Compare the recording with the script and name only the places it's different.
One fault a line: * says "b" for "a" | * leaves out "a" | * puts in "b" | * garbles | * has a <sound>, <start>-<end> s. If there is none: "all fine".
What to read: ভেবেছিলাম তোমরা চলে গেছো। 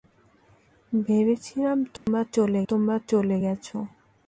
* has a dropout, 2.0-2.1 s
* puts in "তোমরা চলে"